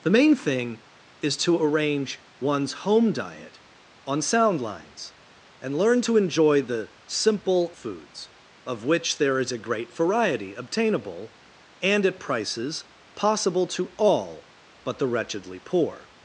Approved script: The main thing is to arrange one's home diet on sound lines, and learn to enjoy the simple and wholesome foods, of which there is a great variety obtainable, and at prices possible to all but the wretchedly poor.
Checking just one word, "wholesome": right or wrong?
wrong